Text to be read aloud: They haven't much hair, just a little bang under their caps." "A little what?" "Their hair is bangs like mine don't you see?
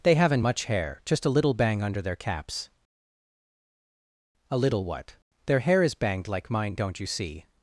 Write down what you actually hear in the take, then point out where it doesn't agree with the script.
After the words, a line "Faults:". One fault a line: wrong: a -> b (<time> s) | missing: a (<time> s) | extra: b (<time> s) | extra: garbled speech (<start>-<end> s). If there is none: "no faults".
They haven't much hair, just a little bang under their caps." "A little what?" "Their hair is banged like mine don't you see?
Faults:
wrong: bangs -> banged (5.9 s)